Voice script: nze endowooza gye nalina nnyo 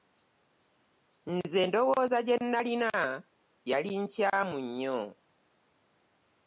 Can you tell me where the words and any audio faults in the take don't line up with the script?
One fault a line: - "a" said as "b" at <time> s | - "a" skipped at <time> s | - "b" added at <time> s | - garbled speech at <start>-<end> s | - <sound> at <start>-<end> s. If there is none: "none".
- "yali nkyamu" added at 3.7 s